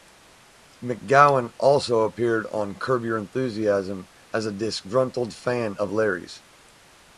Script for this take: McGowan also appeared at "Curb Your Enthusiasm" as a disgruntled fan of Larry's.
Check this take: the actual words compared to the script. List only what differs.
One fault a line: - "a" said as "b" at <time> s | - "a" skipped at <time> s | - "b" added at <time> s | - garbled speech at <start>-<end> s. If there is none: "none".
- "at" said as "on" at 2.5 s